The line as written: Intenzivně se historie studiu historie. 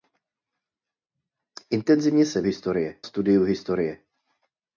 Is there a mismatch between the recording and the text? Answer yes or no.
no